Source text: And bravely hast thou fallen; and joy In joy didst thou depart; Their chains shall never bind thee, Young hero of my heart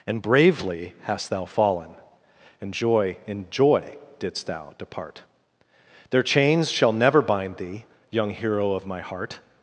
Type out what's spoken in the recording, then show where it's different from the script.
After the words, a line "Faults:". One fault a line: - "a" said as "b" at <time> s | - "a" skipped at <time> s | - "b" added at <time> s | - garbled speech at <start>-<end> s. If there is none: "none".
And bravely hast thou fallen; and joy In joy didst thou depart; Their chains shall never bind thee, Young hero of my heart
Faults:
none